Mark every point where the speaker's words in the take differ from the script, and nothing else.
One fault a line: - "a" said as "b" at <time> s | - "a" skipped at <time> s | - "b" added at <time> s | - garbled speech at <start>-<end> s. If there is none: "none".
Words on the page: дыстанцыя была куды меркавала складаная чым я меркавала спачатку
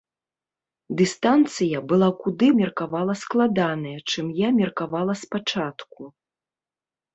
none